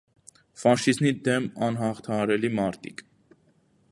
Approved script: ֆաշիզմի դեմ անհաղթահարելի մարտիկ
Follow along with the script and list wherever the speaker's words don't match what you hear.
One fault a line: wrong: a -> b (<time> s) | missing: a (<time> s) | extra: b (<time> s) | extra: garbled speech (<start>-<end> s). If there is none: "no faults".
no faults